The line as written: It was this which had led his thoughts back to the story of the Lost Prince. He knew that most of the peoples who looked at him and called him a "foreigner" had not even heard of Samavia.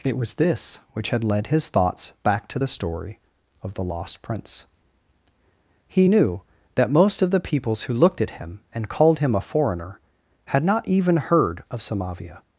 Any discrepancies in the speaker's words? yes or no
no